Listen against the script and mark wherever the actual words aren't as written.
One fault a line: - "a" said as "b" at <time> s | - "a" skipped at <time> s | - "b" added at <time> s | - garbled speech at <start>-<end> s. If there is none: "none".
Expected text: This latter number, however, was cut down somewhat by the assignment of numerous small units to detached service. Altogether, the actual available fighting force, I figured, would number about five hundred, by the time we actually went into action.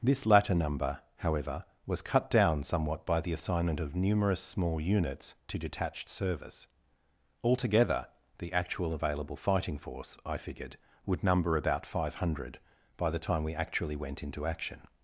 none